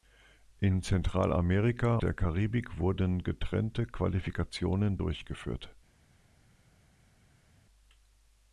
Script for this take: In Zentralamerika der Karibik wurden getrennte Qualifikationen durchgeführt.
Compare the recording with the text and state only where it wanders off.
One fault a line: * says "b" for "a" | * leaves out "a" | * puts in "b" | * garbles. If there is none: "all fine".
all fine